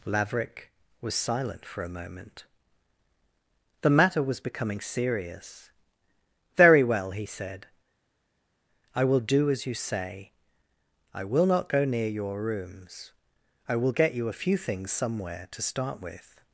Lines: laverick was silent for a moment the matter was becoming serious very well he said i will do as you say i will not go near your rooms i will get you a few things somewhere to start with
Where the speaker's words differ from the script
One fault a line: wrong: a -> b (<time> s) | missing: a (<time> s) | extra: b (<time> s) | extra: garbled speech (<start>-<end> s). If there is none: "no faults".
no faults